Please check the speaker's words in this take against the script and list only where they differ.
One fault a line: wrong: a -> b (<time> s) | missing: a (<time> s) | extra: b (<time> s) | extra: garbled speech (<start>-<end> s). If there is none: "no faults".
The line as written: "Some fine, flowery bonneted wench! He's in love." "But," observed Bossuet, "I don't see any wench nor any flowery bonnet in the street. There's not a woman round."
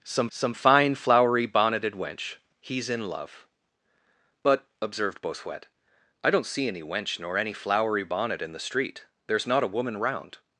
extra: some (0.3 s)